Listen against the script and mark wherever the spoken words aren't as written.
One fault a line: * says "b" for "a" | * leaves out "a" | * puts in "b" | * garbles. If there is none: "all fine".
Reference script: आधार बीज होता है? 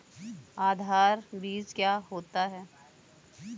* puts in "क्या"